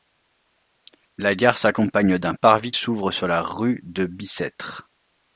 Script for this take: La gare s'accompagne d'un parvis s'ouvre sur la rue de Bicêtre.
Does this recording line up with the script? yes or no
yes